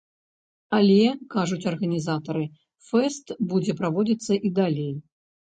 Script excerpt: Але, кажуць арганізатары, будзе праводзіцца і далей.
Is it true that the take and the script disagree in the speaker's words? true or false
true